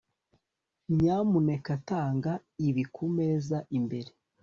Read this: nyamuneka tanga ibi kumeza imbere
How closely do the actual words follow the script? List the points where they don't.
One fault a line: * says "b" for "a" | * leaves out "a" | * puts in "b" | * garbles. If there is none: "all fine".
all fine